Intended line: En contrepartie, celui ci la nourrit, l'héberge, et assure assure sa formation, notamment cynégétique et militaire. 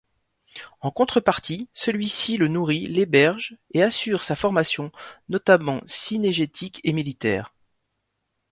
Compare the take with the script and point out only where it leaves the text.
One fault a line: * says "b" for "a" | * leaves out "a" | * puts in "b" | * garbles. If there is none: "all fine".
* says "le" for "la"
* leaves out "assure"